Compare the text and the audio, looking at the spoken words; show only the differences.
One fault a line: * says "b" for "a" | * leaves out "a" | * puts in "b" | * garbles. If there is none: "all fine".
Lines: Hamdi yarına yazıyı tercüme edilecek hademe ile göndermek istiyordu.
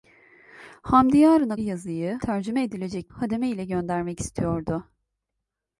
all fine